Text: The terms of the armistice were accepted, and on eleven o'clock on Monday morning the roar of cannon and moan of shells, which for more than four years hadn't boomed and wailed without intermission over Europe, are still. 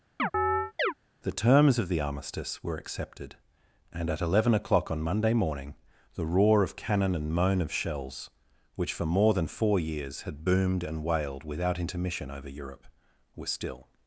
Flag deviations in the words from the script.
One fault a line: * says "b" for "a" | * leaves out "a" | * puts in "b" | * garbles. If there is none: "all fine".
* says "at" for "on"
* says "had" for "hadn't"
* says "were" for "are"